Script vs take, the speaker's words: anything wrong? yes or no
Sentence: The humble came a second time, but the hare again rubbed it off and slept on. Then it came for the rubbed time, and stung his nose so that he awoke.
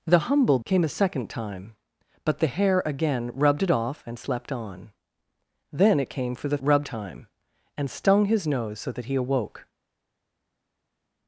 no